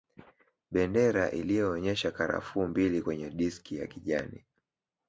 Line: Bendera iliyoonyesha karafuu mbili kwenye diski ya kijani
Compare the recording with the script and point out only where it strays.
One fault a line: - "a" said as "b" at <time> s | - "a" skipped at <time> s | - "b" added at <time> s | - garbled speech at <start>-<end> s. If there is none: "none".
none